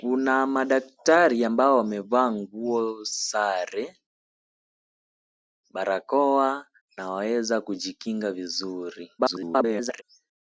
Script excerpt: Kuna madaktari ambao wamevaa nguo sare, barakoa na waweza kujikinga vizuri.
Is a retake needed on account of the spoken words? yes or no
yes